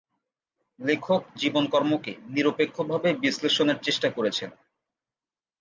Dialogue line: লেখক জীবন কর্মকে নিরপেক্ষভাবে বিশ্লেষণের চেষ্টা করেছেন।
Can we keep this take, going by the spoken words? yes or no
yes